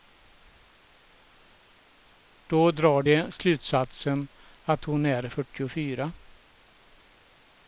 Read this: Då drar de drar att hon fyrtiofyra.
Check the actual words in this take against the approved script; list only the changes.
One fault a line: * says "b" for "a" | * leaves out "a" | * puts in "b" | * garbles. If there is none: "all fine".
* says "slutsatsen" for "drar"
* puts in "är"